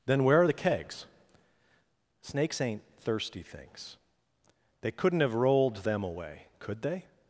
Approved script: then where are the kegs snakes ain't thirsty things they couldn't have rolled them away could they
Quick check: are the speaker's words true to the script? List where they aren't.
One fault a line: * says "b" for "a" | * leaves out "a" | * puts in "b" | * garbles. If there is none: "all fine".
all fine